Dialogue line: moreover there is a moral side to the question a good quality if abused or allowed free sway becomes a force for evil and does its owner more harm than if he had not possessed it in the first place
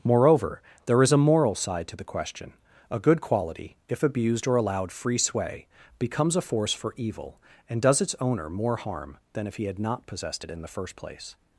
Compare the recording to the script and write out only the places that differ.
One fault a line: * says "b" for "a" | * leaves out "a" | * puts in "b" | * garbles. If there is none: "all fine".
all fine